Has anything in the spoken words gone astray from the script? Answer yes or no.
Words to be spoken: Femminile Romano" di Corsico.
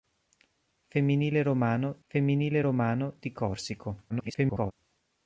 yes